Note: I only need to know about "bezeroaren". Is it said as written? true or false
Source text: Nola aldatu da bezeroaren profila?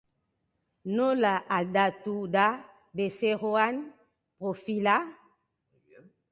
true